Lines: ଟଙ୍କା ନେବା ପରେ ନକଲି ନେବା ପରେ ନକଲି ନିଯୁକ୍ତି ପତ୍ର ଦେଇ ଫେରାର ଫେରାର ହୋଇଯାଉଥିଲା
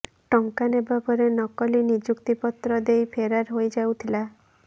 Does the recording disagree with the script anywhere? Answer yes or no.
yes